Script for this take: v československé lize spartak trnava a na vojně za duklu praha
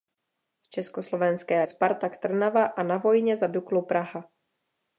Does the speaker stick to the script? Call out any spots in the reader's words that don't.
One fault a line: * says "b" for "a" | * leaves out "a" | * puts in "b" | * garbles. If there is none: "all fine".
* leaves out "lize"